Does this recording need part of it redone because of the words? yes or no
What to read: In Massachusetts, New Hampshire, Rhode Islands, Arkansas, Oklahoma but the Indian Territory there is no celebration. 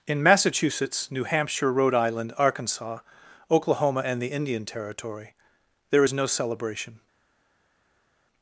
yes